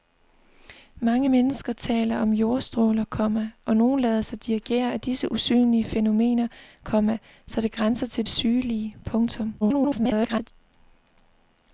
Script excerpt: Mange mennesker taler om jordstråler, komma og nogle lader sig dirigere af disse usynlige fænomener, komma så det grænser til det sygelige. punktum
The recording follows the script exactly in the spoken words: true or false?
false